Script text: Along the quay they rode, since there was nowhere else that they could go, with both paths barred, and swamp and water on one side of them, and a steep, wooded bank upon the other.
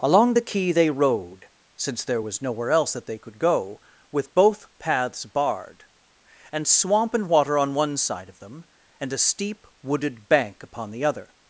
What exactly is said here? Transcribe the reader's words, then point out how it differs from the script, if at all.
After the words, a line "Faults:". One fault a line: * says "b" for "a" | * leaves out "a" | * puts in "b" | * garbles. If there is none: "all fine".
Along the quay they rode, since there was nowhere else that they could go, with both paths barred, and swamp and water on one side of them, and a steep, wooded bank upon the other.
Faults:
all fine